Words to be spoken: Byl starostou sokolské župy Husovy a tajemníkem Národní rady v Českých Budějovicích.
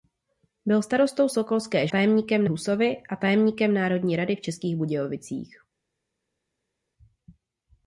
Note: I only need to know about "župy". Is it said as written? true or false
false